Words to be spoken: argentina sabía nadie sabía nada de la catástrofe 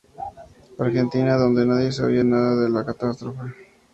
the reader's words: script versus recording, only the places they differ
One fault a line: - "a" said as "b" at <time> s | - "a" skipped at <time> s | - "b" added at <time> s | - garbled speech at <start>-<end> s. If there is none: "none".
- "sabía" said as "donde" at 1.4 s